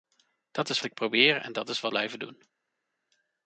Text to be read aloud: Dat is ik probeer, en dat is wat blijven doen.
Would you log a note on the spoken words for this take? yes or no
no